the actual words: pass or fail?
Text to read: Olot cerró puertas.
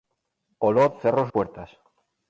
pass